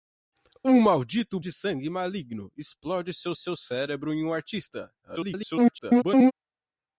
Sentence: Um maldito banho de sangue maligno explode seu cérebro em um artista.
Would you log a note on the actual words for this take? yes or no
yes